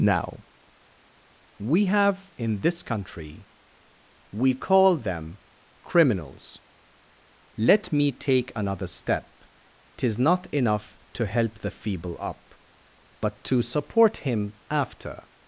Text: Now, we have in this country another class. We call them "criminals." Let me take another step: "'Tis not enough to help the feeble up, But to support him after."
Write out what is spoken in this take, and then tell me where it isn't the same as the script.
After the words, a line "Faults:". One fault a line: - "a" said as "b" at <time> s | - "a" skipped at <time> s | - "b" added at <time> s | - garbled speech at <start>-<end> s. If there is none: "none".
Now, we have in this country. We call them "criminals." Let me take another step: "'Tis not enough to help the feeble up, But to support him after."
Faults:
- "another class" skipped at 3.5 s